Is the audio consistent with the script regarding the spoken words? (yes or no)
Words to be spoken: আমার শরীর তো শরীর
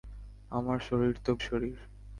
yes